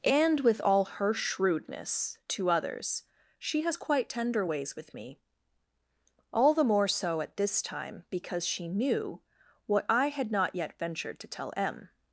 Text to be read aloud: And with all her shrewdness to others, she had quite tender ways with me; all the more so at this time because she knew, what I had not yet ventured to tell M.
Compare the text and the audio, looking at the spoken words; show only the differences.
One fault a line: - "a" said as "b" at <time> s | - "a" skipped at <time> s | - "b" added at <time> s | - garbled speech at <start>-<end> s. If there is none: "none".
- "had" said as "has" at 3.6 s